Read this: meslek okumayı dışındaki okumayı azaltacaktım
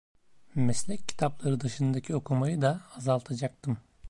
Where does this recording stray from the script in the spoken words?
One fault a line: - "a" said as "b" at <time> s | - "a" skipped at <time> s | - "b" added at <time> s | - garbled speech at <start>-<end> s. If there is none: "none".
- "okumayı" said as "kitapları" at 1.1 s
- "da" added at 2.6 s